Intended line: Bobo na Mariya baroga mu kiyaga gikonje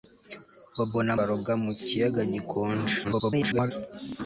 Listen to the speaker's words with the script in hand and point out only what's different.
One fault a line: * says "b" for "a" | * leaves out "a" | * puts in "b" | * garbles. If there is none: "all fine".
* leaves out "Mariya"
* garbles